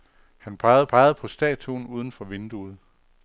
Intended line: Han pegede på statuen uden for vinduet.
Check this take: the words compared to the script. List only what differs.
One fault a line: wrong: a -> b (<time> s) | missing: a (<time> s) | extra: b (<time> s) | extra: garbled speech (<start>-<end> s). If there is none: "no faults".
extra: pegede (0.9 s)